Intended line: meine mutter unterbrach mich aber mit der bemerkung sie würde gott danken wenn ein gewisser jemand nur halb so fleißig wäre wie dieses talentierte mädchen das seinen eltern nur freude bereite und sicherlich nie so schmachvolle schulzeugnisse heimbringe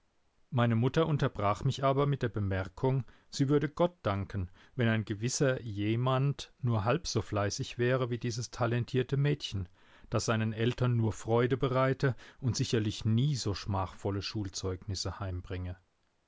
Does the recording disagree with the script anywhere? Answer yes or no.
no